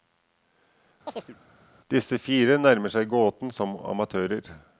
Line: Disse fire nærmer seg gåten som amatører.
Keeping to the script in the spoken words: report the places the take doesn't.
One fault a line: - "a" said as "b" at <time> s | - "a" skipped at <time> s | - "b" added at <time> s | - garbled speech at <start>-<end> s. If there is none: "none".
none